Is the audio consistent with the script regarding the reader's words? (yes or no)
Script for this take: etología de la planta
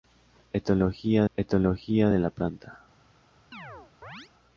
no